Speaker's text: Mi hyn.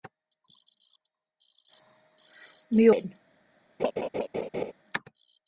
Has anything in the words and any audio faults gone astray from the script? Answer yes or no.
yes